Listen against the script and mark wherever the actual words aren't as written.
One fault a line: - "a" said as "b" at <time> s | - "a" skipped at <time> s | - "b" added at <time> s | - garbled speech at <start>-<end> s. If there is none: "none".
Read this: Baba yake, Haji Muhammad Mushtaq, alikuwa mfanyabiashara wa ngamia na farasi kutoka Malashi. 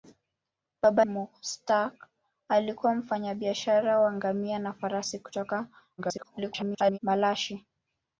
- "yake Haji Muhammad" skipped at 1.1 s
- garbled speech at 6.0-7.0 s